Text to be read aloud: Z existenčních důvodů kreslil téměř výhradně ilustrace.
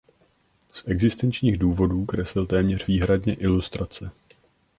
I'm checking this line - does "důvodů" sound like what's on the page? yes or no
yes